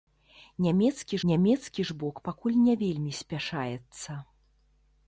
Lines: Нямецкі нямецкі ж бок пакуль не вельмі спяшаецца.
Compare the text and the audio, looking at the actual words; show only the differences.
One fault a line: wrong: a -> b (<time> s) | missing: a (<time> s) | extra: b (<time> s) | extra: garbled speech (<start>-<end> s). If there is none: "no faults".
no faults